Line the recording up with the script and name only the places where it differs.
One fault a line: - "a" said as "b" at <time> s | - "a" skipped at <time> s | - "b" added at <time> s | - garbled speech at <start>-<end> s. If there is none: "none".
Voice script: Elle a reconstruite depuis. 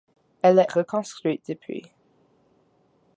none